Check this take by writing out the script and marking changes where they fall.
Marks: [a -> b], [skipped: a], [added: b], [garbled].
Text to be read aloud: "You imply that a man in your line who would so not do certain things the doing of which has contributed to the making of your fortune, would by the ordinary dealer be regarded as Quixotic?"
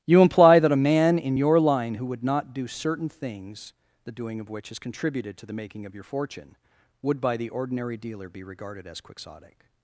"You imply that a man in your line who would [skipped: so] not do certain things the doing of which has contributed to the making of your fortune, would by the ordinary dealer be regarded as Quixotic?"